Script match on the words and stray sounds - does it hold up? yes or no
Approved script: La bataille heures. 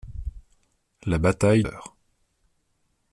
yes